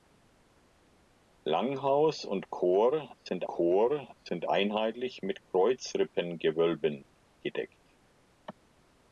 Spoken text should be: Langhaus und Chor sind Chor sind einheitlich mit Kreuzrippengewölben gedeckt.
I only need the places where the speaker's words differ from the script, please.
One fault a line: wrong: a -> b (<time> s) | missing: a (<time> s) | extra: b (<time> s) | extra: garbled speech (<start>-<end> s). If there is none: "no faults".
no faults